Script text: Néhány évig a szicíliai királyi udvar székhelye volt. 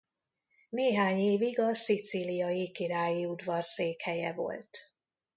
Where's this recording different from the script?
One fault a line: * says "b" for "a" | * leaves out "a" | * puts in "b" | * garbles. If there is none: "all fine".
all fine